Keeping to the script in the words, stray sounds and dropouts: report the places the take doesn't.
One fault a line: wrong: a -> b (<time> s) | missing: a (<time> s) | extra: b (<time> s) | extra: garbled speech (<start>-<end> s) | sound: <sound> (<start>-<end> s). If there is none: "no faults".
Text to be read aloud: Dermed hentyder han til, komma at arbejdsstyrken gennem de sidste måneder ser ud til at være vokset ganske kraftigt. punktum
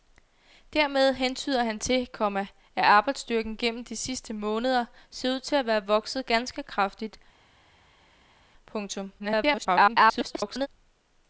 extra: garbled speech (9.2-10.7 s)